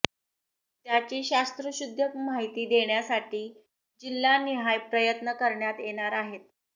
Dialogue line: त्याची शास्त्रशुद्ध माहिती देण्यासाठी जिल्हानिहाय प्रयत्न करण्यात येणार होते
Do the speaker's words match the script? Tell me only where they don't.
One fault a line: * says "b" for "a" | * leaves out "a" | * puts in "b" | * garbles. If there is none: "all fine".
* says "आहेत" for "होते"